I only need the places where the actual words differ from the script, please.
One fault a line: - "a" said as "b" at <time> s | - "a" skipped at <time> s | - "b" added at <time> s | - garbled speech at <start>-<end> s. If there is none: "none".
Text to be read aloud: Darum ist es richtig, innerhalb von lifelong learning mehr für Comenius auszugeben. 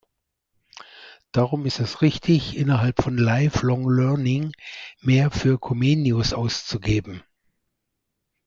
none